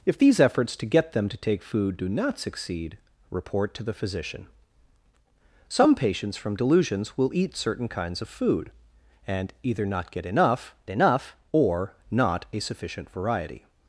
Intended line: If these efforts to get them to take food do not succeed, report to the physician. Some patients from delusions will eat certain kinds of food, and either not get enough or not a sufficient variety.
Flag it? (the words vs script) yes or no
yes